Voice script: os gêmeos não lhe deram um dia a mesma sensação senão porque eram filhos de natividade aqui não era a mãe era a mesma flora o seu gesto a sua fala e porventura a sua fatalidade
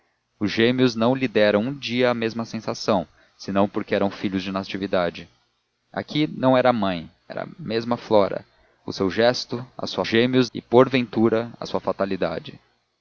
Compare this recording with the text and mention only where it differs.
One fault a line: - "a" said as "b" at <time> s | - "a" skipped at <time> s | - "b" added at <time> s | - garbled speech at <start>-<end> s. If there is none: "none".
- "fala" said as "gêmeos" at 10.1 s